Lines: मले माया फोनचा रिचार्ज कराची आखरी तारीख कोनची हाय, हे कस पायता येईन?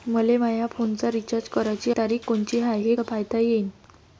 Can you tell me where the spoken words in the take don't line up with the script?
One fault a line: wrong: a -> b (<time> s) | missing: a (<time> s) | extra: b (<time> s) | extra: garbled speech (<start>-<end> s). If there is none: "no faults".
missing: आखरी (1.9 s)
missing: कस (2.9 s)